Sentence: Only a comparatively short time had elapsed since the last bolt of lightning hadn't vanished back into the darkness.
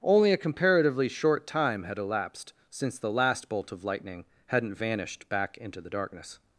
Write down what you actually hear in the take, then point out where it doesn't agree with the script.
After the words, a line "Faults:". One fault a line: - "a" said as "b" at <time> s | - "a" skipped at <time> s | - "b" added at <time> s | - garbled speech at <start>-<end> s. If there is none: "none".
Only a comparatively short time had elapsed since the last bolt of lightning hadn't vanished back into the darkness.
Faults:
none